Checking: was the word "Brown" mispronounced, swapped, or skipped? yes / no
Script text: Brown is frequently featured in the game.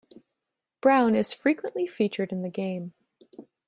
no